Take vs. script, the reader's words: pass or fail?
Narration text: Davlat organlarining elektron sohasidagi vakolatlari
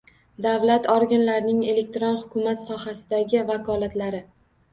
fail